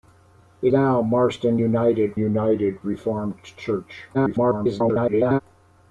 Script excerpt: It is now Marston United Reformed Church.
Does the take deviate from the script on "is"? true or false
true